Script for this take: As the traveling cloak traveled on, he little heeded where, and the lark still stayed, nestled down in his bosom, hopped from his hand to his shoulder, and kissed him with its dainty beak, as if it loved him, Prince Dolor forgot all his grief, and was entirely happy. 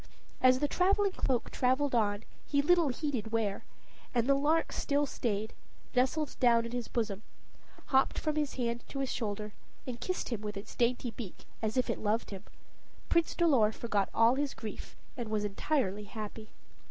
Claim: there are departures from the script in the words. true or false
false